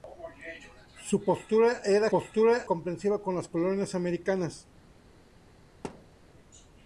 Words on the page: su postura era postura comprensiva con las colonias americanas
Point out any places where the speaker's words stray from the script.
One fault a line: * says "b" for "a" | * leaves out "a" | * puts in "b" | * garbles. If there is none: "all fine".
all fine